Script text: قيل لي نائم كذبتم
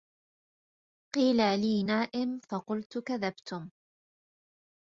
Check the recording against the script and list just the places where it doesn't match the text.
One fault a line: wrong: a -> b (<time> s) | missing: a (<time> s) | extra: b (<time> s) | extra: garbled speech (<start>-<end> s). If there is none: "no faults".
extra: فقلت (2.4 s)